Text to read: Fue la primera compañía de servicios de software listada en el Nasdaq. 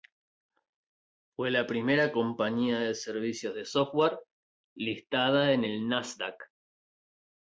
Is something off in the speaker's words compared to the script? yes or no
no